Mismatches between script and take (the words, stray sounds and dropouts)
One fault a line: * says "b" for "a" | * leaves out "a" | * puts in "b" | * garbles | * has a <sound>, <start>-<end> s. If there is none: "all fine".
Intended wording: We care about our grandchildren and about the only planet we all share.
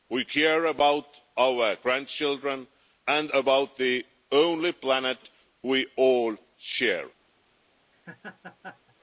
* has a laugh, 7.9-9.0 s